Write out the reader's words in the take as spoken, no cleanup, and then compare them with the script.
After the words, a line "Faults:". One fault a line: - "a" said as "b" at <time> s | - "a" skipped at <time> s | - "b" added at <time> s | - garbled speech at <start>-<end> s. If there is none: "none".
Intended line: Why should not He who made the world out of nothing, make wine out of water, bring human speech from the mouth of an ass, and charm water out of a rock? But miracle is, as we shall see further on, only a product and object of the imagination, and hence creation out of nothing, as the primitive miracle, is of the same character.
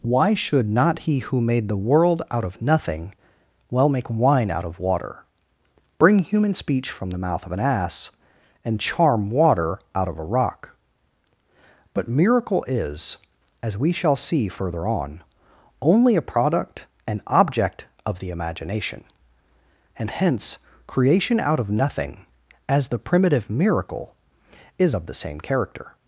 Why should not He who made the world out of nothing, well make wine out of water, bring human speech from the mouth of an ass, and charm water out of a rock? But miracle is, as we shall see further on, only a product and object of the imagination, and hence creation out of nothing, as the primitive miracle, is of the same character.
Faults:
- "well" added at 3.7 s